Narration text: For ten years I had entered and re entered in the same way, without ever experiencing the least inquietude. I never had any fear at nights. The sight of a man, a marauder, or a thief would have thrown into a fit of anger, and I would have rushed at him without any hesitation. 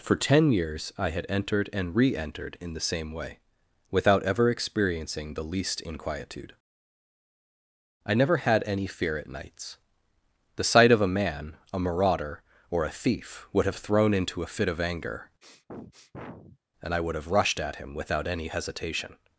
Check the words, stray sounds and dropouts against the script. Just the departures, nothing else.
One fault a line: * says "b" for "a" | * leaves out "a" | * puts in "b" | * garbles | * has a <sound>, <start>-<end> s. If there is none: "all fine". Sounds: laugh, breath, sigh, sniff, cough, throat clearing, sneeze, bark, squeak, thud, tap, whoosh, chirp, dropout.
* has a sniff, 15.4-16.6 s